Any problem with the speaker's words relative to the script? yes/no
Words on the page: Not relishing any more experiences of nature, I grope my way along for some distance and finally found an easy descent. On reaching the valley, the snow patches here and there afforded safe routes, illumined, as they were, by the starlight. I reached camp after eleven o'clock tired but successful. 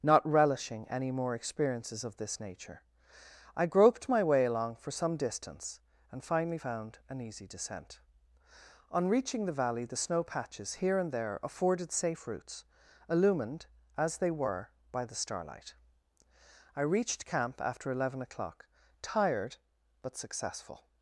yes